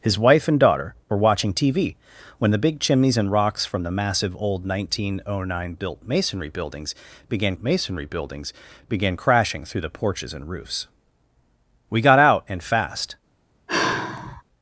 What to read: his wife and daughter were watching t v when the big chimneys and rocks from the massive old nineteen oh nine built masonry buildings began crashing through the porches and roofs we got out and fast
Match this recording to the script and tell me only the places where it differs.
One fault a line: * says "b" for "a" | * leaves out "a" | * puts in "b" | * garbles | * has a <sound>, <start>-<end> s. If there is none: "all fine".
* puts in "masonry buildings began"
* has a sigh, 13.7-14.4 s